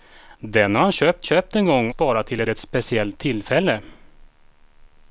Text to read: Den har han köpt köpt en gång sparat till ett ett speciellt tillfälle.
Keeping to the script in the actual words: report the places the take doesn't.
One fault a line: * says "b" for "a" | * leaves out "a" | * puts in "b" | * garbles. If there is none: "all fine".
all fine